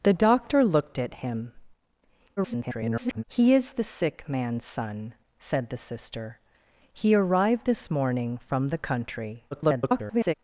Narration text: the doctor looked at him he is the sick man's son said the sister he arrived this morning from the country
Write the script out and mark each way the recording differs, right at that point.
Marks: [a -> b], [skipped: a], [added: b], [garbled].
the doctor looked at him [garbled] he is the sick man's son said the sister he arrived this morning from the country [garbled]